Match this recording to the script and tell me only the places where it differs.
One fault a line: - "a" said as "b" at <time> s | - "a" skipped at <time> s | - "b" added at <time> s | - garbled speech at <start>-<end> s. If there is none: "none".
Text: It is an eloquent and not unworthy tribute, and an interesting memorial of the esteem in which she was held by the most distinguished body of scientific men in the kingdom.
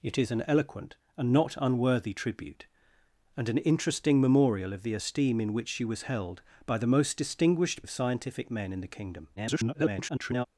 - "body" skipped at 7.8 s
- garbled speech at 9.4-10.5 s